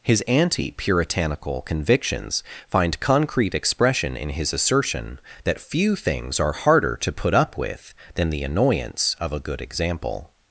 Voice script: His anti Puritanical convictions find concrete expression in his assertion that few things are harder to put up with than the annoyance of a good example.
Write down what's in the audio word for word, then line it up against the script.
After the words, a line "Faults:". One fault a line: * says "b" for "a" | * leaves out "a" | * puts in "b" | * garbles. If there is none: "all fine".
His anti Puritanical convictions find concrete expression in his assertion that few things are harder to put up with than the annoyance of a good example.
Faults:
all fine